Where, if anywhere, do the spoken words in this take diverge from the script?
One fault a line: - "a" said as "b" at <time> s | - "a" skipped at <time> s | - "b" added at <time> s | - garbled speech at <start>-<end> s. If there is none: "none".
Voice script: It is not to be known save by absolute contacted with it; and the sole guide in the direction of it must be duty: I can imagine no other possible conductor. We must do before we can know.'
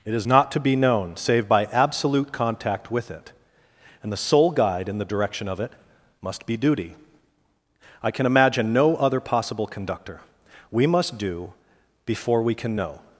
- "contacted" said as "contact" at 2.3 s